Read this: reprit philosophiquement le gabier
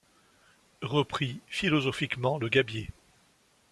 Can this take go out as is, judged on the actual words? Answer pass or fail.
pass